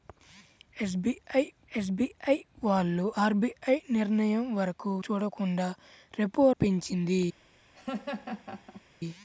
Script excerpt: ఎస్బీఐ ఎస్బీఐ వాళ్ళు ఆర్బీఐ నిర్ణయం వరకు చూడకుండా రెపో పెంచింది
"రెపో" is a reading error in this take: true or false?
false